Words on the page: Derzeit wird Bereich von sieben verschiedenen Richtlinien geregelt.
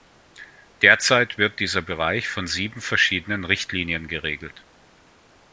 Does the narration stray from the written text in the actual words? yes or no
yes